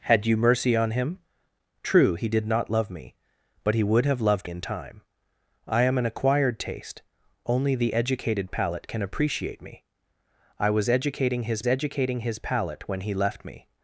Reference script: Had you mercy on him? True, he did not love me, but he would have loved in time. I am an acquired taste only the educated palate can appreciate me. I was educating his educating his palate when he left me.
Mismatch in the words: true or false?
false